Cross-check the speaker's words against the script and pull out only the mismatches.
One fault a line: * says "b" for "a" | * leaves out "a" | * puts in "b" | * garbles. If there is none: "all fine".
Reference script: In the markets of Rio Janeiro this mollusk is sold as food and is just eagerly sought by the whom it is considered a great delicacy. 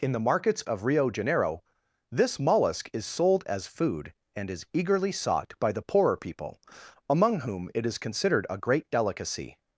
* leaves out "just"
* puts in "poorer people among"